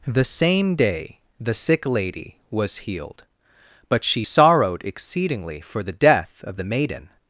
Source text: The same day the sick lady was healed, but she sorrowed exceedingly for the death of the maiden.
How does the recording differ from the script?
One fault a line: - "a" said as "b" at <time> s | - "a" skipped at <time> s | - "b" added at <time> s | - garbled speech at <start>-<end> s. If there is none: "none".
none